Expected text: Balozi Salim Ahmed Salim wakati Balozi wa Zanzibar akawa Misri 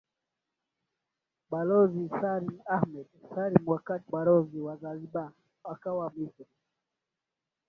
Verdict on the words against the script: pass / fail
pass